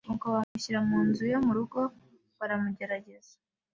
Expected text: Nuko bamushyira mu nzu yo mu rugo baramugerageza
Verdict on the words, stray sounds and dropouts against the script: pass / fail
fail